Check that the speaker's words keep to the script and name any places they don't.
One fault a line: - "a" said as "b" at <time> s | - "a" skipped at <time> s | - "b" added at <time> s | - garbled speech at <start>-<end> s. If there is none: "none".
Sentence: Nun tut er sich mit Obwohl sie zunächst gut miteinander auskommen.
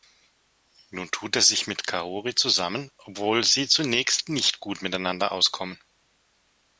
- "Kaori zusammen" added at 1.9 s
- "nicht" added at 4.3 s